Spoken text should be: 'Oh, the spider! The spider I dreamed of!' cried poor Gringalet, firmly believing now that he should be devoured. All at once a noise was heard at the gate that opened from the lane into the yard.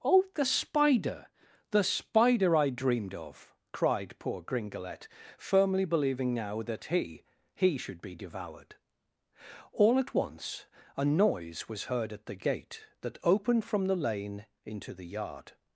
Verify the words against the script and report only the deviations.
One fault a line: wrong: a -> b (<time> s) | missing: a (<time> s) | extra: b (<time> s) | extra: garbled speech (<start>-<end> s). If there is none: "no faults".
extra: he (7.5 s)